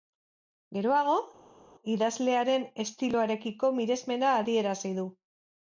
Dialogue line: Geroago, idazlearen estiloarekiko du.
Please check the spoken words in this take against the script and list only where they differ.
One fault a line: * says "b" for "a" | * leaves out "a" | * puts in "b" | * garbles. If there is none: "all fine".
* puts in "miresmena adierazi"